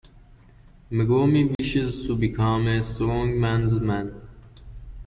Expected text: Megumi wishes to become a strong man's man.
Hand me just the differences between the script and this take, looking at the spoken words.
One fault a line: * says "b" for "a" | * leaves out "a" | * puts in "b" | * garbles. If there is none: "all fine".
all fine